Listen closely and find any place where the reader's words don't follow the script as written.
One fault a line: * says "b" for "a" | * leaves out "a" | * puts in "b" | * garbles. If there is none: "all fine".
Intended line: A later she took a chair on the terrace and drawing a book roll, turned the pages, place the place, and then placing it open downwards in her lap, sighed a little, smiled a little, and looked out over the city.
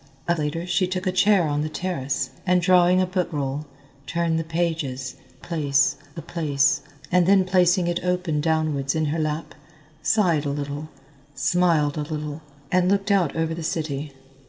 all fine